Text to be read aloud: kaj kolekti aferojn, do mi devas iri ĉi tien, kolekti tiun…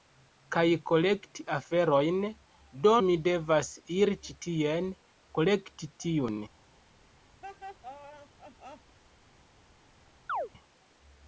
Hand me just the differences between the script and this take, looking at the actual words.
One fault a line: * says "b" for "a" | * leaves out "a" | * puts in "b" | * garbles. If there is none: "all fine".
all fine